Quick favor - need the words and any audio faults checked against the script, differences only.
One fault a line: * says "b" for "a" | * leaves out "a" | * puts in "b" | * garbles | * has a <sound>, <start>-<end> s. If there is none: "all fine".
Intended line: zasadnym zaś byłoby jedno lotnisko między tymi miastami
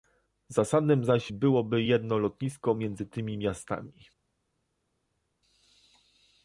all fine